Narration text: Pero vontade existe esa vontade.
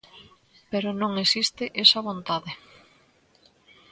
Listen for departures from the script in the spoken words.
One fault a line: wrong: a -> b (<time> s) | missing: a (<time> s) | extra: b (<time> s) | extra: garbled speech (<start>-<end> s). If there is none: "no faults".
wrong: vontade -> non (1.0 s)